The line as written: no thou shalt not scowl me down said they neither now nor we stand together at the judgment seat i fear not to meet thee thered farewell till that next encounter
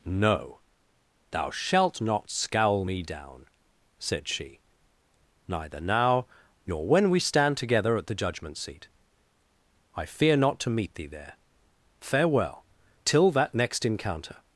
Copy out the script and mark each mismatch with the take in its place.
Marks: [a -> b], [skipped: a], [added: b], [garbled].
no thou shalt not scowl me down said [they -> she] neither now nor [added: when] we stand together at the judgment seat i fear not to meet thee [thered -> there] farewell till that next encounter